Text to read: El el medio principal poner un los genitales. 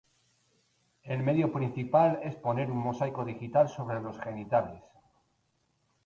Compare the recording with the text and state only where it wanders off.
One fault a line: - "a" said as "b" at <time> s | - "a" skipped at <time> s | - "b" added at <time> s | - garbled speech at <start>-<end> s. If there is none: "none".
- "el" skipped at 1.2 s
- "es" added at 2.2 s
- "mosaico digital sobre" added at 2.8 s